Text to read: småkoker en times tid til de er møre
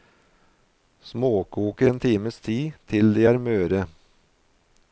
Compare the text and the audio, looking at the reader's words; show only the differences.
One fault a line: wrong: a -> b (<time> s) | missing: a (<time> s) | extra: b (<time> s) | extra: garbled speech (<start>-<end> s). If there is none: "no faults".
no faults